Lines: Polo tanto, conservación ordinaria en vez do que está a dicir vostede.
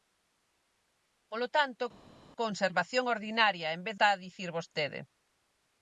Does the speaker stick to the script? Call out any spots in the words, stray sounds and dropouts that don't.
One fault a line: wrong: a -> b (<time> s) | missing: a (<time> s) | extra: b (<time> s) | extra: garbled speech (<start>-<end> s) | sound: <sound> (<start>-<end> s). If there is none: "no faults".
missing: do que (4.0 s)